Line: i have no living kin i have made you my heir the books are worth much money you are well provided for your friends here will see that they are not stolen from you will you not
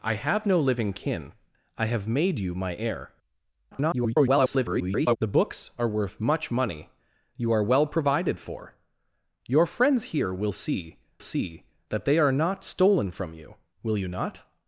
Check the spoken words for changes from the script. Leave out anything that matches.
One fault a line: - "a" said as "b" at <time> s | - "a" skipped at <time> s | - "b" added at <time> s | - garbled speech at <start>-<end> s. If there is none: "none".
- garbled speech at 3.7-5.2 s
- "see" added at 11.2 s